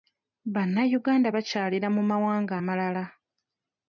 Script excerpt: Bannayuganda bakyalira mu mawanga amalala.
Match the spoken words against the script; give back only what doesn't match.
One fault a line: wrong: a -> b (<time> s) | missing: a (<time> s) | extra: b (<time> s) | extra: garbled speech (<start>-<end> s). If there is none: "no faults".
no faults